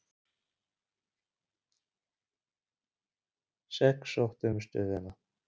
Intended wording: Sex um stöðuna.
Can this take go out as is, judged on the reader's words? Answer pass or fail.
fail